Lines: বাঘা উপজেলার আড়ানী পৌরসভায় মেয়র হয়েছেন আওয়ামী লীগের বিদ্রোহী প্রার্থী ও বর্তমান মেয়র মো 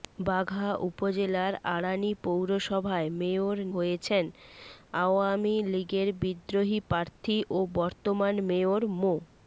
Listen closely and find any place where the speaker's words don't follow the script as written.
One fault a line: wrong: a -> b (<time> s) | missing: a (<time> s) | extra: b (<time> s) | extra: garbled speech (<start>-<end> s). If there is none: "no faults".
no faults